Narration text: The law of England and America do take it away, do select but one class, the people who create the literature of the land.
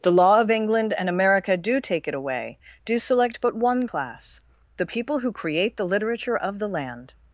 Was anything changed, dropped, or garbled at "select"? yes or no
no